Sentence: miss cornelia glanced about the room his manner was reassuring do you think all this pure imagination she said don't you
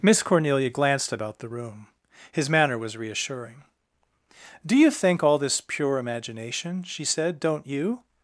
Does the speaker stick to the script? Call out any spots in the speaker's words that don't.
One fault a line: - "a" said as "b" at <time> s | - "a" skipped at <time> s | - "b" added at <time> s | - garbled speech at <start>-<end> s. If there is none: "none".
none